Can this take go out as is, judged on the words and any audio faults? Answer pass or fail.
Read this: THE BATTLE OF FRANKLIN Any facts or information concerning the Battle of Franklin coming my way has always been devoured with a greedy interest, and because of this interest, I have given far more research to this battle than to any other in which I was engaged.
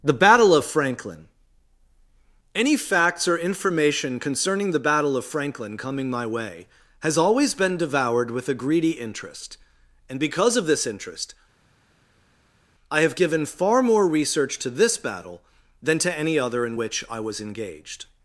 pass